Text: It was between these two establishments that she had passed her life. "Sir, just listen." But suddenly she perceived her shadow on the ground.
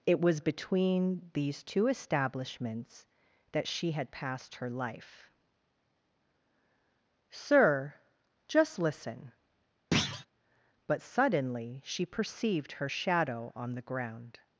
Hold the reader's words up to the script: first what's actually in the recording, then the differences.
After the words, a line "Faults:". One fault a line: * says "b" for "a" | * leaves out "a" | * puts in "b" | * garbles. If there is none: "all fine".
It was between these two establishments that she had passed her life. "Sir, just listen." But suddenly she perceived her shadow on the ground.
Faults:
all fine